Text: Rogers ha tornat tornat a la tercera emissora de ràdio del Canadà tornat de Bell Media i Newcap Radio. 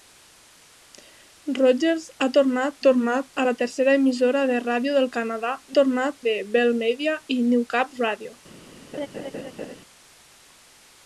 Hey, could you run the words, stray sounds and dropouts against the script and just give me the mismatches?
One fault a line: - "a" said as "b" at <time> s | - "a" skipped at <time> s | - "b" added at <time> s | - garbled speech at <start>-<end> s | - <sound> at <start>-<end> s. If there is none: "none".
- laugh at 8.9-9.8 s